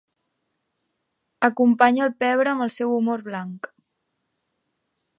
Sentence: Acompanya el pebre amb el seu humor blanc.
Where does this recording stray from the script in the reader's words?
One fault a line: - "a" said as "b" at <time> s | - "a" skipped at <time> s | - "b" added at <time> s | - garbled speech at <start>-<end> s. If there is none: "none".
none